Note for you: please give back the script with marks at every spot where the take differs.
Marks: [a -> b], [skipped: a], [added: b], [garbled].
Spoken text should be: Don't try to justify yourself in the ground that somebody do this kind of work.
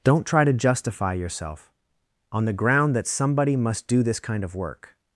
Don't try to justify yourself [in -> on] the ground that somebody [added: must] do this kind of work.